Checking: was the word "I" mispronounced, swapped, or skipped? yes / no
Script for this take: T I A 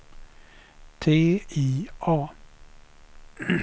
no